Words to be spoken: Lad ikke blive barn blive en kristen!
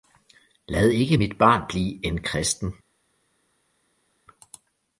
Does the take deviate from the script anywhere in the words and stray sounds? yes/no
yes